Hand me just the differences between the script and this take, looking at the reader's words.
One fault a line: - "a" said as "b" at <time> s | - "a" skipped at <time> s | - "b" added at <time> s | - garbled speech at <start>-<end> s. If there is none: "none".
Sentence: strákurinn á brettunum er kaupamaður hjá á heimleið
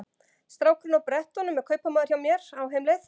- "mér" added at 2.2 s